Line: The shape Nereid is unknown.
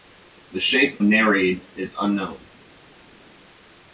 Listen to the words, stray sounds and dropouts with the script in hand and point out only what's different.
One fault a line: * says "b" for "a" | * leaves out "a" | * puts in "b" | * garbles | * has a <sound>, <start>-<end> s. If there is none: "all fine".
all fine